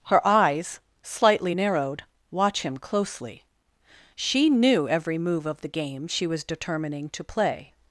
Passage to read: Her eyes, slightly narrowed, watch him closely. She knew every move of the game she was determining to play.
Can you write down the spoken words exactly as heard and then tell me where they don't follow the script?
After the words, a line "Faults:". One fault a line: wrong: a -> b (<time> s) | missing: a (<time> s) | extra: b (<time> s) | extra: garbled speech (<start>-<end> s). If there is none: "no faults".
Her eyes, slightly narrowed, watch him closely. She knew every move of the game she was determining to play.
Faults:
no faults